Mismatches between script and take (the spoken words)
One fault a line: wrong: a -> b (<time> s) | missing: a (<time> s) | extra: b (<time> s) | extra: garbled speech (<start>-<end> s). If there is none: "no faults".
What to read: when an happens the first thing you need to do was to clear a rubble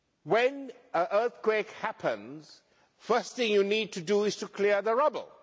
extra: earthquake (1.1 s)
wrong: was -> is (4.2 s)
wrong: a -> the (4.8 s)